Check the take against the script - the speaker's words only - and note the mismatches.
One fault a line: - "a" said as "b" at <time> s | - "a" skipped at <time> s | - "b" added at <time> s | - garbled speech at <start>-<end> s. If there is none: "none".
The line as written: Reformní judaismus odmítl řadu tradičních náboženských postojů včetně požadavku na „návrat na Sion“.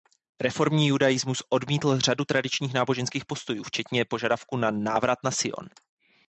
none